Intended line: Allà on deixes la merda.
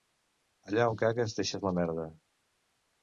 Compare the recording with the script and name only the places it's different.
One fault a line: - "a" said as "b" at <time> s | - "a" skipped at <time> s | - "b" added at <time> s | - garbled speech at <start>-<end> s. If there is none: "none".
- "cagues" added at 1.0 s